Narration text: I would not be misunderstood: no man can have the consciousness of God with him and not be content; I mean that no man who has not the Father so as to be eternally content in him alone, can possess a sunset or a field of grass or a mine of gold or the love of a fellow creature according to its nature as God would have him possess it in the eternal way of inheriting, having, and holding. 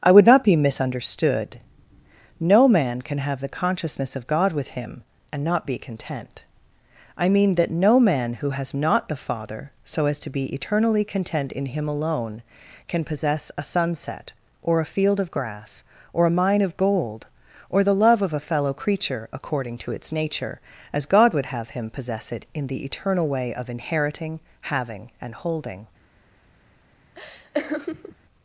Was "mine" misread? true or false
false